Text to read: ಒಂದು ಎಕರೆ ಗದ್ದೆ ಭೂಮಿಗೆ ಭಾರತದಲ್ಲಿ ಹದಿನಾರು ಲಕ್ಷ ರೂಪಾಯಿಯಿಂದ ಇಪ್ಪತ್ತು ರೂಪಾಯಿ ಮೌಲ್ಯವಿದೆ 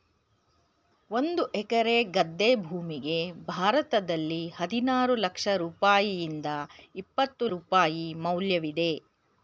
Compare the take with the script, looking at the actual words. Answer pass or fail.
pass